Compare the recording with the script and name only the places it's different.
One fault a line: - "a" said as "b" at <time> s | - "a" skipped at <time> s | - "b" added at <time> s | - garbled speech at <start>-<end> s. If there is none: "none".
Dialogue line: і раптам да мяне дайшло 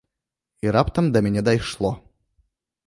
none